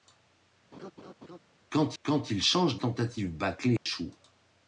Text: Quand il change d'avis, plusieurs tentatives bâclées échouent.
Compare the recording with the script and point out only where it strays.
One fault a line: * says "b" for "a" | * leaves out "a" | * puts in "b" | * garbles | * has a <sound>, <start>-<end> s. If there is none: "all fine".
* has a laugh, 0.7-1.4 s
* puts in "quand"
* leaves out "d'avis plusieurs"
* has a dropout, 3.8-3.9 s